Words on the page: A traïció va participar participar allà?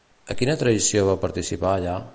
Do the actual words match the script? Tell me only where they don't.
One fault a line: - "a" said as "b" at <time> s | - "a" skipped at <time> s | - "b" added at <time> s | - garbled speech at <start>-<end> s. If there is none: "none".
- "quina" added at 0.4 s
- "participar" skipped at 1.8 s